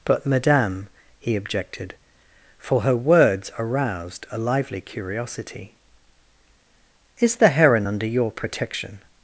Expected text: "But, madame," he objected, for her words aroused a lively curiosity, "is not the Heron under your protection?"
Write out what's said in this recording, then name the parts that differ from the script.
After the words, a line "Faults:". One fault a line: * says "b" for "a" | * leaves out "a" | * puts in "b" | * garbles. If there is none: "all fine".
"But, madame," he objected, for her words aroused a lively curiosity, "is the Heron under your protection?"
Faults:
* leaves out "not"